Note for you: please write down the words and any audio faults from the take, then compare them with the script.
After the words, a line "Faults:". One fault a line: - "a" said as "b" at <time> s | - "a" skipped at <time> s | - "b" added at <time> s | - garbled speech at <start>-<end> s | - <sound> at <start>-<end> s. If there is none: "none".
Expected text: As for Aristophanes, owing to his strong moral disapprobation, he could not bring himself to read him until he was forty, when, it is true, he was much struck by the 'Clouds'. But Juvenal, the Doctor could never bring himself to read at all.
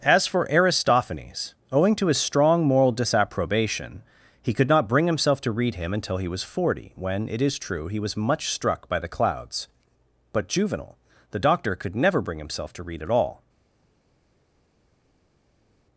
As for Aristophanes, owing to his strong moral disapprobation, he could not bring himself to read him until he was forty, when, it is true, he was much struck by the 'Clouds'. But Juvenal, the Doctor could never bring himself to read at all.
Faults:
none